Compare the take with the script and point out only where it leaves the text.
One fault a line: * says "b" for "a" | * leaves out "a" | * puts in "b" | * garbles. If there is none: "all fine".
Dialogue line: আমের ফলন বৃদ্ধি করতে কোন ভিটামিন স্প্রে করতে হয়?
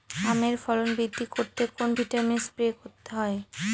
all fine